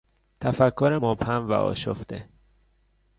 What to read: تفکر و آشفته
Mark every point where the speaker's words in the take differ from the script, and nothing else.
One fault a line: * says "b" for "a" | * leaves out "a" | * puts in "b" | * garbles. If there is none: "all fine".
* puts in "مبهم"